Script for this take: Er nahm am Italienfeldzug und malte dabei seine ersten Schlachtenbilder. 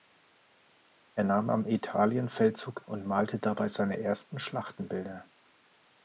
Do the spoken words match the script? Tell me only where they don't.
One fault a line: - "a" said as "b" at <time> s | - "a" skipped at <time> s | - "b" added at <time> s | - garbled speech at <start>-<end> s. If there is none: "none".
none